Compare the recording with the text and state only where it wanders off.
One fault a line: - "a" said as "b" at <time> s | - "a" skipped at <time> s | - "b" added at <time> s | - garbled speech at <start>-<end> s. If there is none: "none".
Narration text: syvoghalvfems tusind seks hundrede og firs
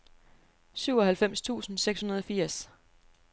none